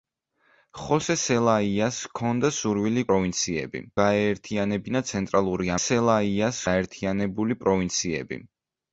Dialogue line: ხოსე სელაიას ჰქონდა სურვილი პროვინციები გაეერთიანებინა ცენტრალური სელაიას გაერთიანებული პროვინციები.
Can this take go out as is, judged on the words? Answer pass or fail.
pass